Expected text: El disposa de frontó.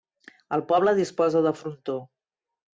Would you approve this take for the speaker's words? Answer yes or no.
no